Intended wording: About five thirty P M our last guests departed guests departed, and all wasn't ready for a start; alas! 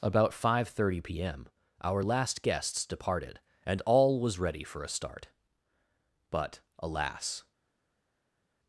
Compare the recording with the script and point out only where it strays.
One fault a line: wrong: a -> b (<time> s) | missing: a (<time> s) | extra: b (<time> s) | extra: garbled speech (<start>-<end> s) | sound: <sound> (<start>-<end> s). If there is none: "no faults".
missing: guests departed (3.4 s)
wrong: wasn't -> was (4.2 s)
extra: but (6.3 s)